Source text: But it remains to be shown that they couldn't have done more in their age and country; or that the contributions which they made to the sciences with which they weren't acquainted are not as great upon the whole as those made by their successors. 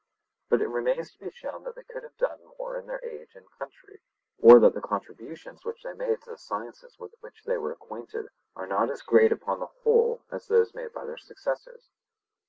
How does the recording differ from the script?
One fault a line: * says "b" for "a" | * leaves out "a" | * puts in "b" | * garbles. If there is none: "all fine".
* says "could" for "couldn't"
* says "were" for "weren't"